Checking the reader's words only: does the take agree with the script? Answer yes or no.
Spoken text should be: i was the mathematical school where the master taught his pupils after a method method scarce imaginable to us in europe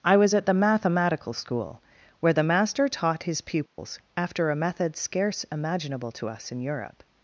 no